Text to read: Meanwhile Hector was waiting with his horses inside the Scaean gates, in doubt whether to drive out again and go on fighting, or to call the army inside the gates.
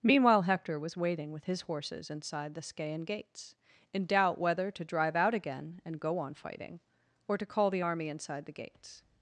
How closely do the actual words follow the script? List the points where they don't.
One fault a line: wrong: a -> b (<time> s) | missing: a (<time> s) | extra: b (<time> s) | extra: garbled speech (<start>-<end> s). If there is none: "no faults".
no faults